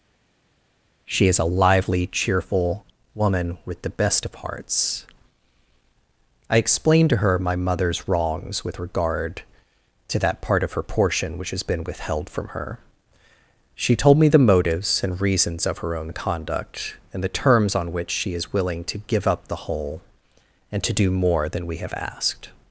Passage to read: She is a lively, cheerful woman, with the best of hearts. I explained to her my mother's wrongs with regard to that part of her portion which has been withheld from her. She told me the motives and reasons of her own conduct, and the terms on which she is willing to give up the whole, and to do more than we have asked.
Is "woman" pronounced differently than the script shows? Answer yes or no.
no